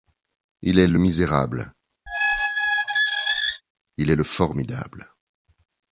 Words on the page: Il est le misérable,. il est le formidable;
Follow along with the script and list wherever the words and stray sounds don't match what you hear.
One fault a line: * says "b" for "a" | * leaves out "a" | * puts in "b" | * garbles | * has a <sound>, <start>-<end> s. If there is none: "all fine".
* has a squeak, 2.1-3.6 s